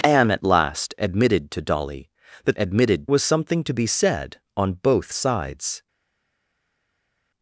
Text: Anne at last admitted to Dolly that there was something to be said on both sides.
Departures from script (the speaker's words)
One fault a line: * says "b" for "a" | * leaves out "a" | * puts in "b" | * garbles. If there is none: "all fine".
* says "admitted" for "there"